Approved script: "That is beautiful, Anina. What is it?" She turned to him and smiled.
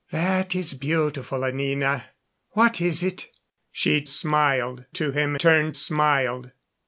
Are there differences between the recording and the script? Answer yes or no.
yes